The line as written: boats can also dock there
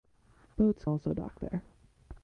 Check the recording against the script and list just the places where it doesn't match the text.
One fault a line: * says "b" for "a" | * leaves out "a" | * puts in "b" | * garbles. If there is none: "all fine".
* leaves out "can"